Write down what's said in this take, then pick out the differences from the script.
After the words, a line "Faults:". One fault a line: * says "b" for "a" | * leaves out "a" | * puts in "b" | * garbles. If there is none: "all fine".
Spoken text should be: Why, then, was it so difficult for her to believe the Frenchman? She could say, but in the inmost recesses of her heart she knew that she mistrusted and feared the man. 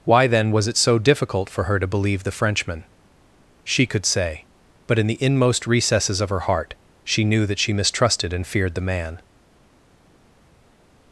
Why, then, was it so difficult for her to believe the Frenchman? She could say, but in the inmost recesses of her heart she knew that she mistrusted and feared the man.
Faults:
all fine